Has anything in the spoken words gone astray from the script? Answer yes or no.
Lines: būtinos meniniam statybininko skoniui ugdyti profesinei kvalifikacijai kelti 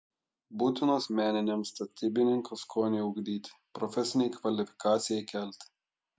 no